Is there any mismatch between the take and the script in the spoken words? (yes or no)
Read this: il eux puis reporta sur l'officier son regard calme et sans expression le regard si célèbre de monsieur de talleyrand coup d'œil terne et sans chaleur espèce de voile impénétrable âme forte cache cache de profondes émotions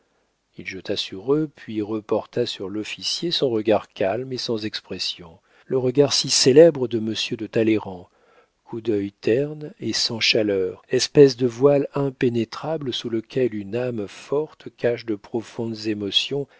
yes